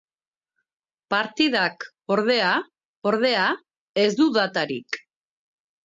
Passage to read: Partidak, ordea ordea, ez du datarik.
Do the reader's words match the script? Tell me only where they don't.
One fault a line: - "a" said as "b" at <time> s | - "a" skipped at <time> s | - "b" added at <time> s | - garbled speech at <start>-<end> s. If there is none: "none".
none